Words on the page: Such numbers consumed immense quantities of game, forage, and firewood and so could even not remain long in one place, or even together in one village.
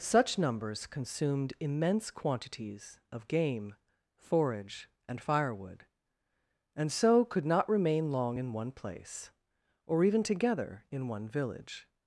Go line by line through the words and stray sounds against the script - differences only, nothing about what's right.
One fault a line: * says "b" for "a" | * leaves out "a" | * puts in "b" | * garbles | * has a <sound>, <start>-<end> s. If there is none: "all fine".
* leaves out "even"